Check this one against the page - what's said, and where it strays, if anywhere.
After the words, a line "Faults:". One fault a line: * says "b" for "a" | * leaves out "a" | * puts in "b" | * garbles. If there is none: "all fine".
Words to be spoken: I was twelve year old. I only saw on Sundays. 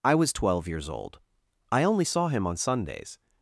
I was twelve years old. I only saw him on Sundays.
Faults:
* says "years" for "year"
* puts in "him"